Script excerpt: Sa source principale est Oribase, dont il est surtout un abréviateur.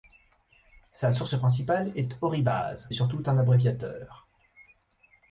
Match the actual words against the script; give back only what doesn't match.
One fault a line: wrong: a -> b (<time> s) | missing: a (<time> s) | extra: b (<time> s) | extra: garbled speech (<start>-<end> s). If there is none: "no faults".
missing: dont il (2.9 s)